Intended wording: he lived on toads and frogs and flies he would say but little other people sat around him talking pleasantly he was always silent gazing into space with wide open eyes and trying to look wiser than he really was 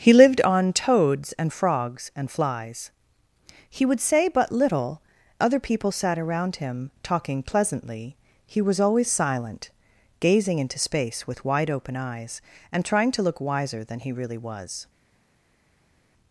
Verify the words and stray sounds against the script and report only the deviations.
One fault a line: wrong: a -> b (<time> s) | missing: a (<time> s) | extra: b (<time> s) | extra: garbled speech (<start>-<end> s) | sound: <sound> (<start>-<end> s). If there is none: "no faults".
no faults